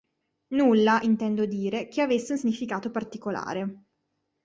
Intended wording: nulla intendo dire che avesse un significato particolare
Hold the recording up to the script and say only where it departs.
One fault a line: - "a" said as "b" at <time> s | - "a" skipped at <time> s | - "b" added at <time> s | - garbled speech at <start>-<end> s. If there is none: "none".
none